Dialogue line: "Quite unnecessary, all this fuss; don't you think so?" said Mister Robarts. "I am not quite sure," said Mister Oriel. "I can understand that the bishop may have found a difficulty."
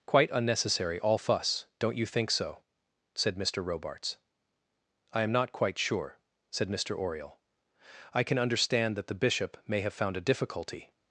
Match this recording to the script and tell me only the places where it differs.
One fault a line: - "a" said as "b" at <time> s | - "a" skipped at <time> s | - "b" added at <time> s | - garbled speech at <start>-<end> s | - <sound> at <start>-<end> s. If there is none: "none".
- "this" skipped at 1.2 s